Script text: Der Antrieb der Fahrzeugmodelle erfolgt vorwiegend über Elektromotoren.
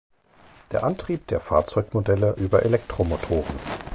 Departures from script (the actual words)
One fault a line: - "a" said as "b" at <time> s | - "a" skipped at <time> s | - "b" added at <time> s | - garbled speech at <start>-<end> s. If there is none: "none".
- "erfolgt vorwiegend" skipped at 2.4 s